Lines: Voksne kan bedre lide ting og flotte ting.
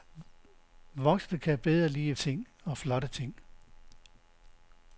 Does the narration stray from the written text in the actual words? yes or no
no